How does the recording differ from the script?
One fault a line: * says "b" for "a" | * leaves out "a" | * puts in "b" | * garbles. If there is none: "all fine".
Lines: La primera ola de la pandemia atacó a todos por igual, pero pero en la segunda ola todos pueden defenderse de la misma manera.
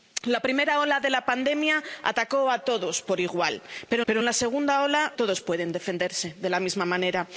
all fine